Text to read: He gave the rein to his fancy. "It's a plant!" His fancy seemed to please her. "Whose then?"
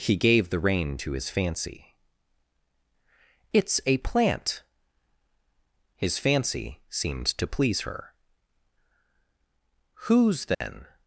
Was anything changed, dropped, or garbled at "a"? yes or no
no